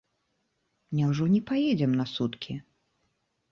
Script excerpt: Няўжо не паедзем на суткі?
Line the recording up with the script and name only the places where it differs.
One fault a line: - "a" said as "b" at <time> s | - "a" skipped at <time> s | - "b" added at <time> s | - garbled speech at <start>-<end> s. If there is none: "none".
none